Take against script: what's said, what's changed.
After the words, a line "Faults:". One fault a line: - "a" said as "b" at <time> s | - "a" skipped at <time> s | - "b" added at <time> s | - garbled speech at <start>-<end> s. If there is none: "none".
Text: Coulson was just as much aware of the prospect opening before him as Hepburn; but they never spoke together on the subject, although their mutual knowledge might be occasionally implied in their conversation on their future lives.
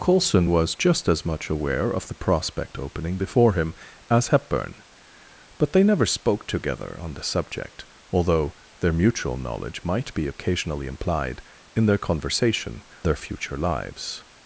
Coulson was just as much aware of the prospect opening before him as Hepburn; but they never spoke together on the subject, although their mutual knowledge might be occasionally implied in their conversation their future lives.
Faults:
- "on" skipped at 12.9 s